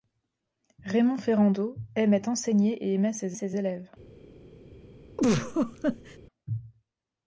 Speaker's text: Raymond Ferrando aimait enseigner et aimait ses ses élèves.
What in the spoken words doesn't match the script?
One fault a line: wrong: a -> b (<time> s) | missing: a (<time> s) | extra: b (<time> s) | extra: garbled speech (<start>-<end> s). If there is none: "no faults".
no faults